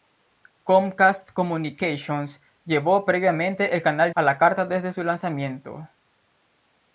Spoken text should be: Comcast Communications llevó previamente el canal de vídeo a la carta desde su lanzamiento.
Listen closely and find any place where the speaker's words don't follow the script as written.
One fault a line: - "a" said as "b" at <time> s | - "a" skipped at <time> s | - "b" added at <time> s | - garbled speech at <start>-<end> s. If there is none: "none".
- "de vídeo" skipped at 4.1 s